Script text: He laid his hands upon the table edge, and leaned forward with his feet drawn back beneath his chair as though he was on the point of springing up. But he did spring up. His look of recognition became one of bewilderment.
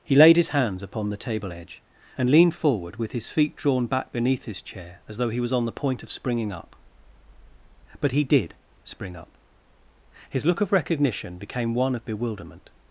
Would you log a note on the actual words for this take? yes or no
no